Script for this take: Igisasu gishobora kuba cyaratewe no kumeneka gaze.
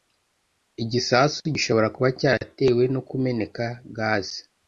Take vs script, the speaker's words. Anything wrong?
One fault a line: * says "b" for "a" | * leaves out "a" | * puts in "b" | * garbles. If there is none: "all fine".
all fine